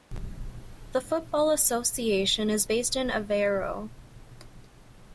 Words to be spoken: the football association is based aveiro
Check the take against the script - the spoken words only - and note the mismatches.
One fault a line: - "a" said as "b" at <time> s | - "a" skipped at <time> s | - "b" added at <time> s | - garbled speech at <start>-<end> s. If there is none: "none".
- "in" added at 2.9 s